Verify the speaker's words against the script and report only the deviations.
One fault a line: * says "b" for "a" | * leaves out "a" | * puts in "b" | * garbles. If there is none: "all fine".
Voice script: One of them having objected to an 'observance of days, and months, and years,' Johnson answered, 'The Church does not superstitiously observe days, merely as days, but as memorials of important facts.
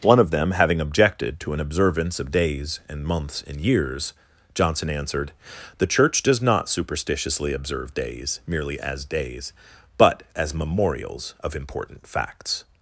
all fine